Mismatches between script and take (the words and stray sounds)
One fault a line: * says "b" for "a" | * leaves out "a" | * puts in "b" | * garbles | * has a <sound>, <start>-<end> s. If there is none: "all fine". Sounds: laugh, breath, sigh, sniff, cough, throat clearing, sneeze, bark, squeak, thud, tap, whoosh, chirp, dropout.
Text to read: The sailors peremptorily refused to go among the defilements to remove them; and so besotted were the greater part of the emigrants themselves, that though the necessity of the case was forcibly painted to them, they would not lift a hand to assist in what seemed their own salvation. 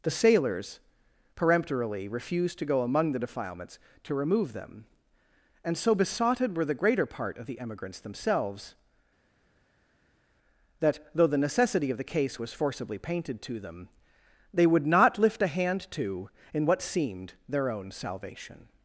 * leaves out "assist"